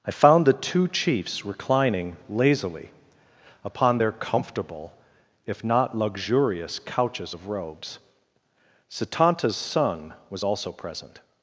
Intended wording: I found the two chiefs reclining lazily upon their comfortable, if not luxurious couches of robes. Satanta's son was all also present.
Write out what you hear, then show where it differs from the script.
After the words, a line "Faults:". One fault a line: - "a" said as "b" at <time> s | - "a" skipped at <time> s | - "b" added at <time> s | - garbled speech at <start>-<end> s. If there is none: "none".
I found the two chiefs reclining lazily upon their comfortable, if not luxurious couches of robes. Satanta's son was also present.
Faults:
- "all" skipped at 10.4 s